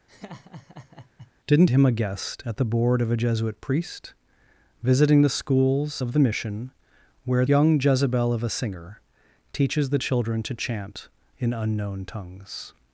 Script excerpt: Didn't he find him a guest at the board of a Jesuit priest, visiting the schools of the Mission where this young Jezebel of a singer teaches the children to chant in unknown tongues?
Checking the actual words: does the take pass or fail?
fail